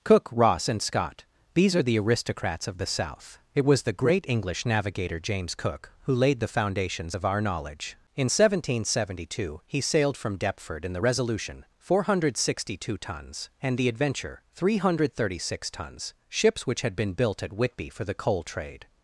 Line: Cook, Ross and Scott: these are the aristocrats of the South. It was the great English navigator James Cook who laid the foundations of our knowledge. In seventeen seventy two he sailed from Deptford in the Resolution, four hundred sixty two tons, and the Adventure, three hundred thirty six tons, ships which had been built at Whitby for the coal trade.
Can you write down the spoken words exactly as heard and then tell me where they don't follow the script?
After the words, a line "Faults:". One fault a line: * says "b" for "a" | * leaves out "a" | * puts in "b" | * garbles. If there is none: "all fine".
Cook, Ross and Scott: these are the aristocrats of the South. It was the great English navigator James Cook who laid the foundations of our knowledge. In seventeen seventy two he sailed from Deptford in the Resolution, four hundred sixty two tons, and the Adventure, three hundred thirty six tons, ships which had been built at Whitby for the coal trade.
Faults:
all fine